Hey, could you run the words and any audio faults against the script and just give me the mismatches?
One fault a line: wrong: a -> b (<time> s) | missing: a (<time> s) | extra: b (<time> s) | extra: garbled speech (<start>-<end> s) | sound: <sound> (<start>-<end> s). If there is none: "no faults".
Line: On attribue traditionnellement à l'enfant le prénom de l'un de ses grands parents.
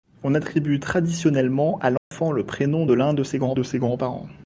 sound: dropout (2.0-2.1 s)
extra: de ses grands (3.5 s)